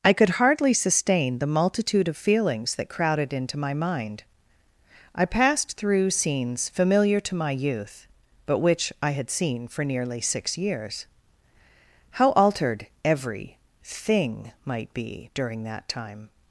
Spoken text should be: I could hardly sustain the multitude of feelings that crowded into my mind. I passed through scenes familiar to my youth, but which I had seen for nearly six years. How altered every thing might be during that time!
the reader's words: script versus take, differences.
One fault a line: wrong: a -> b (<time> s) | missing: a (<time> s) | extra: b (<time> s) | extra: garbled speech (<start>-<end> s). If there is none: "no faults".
no faults